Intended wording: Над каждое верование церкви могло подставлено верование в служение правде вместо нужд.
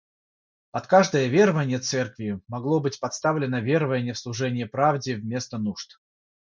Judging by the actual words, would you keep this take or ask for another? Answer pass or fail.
fail